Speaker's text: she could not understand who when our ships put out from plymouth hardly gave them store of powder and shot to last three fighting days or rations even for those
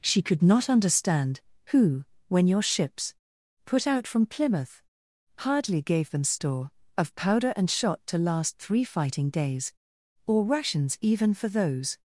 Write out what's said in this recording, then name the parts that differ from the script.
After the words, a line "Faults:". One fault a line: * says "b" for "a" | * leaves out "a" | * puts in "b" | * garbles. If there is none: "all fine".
she could not understand who when your ships put out from plymouth hardly gave them store of powder and shot to last three fighting days or rations even for those
Faults:
* says "your" for "our"